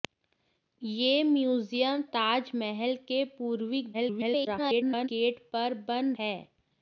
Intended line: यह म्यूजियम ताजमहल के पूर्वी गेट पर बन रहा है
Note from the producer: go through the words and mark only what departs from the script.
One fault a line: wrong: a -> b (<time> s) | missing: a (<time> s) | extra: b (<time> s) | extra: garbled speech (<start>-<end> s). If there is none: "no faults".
extra: garbled speech (3.9-5.1 s)
missing: रहा (6.1 s)